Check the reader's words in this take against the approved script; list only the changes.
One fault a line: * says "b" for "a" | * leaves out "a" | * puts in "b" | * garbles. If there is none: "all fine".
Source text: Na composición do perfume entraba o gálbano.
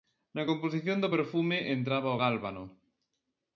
all fine